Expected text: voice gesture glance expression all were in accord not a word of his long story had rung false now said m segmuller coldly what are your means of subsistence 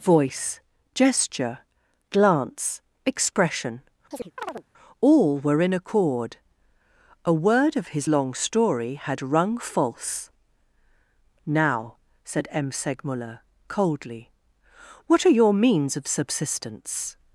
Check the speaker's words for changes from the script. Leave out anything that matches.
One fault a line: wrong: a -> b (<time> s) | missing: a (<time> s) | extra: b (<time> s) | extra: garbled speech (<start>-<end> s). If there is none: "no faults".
missing: not (6.4 s)